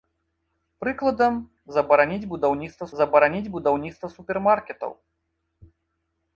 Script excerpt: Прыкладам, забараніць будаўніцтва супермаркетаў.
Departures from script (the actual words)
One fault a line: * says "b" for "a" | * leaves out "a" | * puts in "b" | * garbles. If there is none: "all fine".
* puts in "забараніць будаўніцтва"